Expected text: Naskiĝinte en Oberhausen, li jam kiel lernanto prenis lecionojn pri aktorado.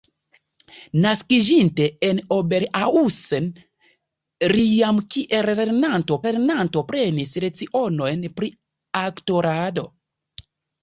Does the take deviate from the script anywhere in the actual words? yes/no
yes